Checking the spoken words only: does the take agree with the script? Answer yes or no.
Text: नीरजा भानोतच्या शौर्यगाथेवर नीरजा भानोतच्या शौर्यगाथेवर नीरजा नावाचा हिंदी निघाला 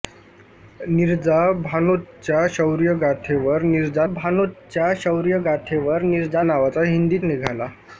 yes